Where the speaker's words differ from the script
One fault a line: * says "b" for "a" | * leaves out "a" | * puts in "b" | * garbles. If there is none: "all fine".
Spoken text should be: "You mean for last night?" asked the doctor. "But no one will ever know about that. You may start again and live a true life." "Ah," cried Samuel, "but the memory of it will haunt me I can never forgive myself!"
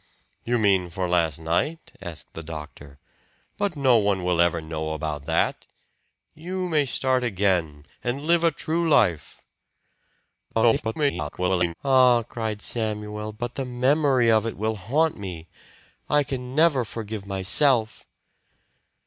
* garbles